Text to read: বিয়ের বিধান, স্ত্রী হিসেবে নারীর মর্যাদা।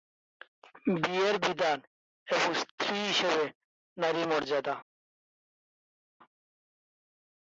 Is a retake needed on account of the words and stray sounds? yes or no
yes